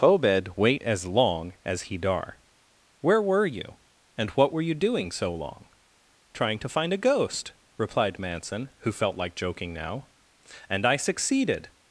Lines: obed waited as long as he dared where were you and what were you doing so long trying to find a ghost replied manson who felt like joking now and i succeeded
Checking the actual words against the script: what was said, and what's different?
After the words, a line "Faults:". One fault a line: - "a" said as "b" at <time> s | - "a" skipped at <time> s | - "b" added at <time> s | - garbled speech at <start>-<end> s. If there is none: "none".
obed wait as long as he dar where were you and what were you doing so long trying to find a ghost replied manson who felt like joking now and i succeeded
Faults:
- "waited" said as "wait" at 0.6 s
- "dared" said as "dar" at 2.0 s